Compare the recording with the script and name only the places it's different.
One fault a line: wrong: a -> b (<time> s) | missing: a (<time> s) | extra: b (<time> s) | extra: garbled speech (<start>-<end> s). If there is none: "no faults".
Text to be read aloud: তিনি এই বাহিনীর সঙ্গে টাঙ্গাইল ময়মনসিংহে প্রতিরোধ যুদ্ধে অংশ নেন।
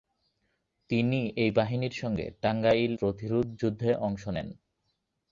missing: ময়মনসিংহে (2.9 s)